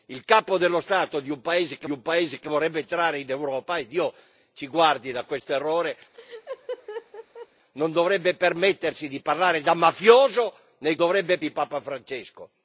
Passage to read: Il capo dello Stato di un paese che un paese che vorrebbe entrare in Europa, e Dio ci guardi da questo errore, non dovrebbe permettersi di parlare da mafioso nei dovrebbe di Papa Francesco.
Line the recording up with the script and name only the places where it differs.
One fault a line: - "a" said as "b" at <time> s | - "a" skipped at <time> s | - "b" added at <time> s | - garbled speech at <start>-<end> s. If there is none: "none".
none